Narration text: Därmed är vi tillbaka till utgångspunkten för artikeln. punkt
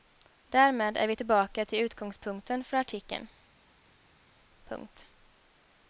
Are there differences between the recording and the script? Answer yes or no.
no